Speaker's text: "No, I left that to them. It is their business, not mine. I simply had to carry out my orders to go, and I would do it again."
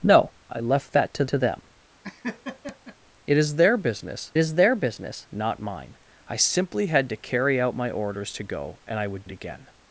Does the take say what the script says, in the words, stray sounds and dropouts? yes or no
no